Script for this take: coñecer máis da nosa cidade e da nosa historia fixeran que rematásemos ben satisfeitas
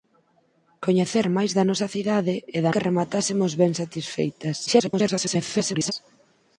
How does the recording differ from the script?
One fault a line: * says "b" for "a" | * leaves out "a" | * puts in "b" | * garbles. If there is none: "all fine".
* leaves out "nosa historia fixeran"
* garbles